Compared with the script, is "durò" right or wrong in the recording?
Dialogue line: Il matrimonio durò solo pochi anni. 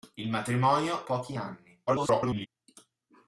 wrong